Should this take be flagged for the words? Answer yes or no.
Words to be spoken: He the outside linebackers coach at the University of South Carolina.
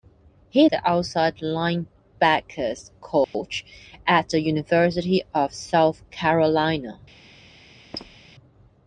no